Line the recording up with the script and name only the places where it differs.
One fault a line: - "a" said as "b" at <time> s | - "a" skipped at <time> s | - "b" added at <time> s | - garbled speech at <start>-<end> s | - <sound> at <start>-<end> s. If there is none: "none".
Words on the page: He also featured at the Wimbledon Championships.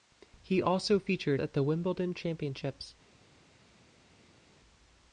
none